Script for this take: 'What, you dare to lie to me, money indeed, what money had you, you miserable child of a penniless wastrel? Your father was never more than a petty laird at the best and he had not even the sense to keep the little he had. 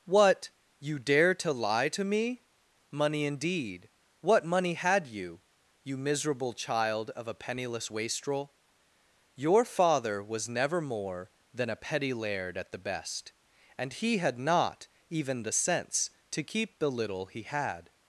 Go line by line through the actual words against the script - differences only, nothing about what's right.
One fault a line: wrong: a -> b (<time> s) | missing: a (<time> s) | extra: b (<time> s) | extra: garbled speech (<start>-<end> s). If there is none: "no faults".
no faults